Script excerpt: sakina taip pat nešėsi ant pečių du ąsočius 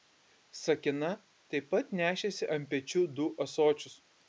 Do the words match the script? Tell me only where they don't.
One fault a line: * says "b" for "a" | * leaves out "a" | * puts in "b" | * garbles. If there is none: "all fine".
all fine